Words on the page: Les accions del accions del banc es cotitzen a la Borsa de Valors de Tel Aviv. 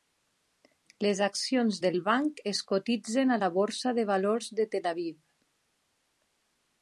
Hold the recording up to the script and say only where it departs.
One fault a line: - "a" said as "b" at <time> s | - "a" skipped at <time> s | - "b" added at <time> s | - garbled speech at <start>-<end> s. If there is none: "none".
- "accions del" skipped at 2.0 s